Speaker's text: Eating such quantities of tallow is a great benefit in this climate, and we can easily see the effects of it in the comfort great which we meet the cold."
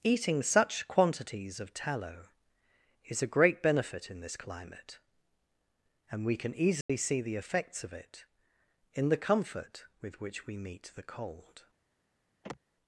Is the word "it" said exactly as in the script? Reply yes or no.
yes